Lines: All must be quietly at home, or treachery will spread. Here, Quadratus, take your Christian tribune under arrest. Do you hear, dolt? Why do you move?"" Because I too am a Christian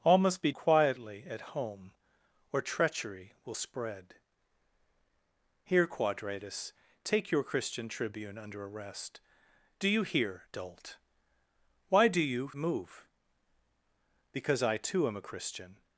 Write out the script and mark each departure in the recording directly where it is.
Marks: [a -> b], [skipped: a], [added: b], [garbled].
All must be quietly at home, or treachery will spread. Here, Quadratus, take your Christian tribune under arrest. Do you hear, dolt? Why do you move?"" Because I too am a Christian